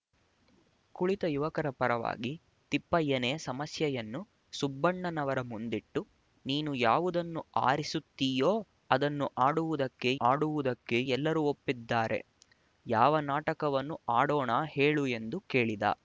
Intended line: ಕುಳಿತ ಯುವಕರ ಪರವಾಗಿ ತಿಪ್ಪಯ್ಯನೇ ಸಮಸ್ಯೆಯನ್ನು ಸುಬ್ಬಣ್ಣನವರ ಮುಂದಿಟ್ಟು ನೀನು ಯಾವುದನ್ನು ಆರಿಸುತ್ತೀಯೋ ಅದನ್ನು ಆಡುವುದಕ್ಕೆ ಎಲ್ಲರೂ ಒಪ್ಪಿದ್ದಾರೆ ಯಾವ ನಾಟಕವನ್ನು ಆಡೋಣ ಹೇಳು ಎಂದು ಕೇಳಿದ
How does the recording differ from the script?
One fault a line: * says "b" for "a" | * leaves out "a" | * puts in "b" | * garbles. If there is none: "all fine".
* puts in "ಆಡುವುದಕ್ಕೆ"